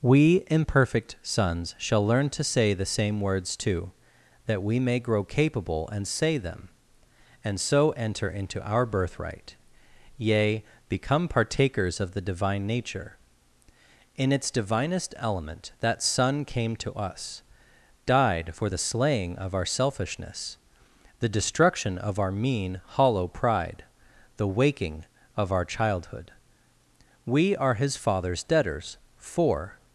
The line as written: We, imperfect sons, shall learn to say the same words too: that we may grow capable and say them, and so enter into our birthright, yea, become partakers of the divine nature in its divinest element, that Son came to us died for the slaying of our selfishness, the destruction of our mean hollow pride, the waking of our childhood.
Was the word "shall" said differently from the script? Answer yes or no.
no